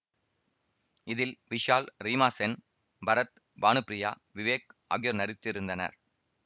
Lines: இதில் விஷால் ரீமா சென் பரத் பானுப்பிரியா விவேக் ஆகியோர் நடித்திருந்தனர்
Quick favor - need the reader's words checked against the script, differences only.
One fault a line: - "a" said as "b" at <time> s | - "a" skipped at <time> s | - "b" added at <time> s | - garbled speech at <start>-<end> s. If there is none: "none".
none